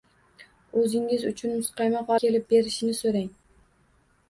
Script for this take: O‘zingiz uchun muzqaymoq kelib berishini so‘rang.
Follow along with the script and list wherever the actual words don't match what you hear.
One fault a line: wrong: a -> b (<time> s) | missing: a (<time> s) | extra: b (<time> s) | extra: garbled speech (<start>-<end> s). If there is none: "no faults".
no faults